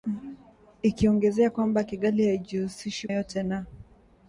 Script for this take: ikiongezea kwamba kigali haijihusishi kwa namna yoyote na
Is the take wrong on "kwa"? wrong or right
wrong